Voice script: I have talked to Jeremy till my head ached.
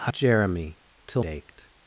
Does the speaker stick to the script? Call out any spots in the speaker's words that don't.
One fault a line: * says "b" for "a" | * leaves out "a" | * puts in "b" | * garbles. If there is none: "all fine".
* leaves out "have talked to"
* leaves out "my head"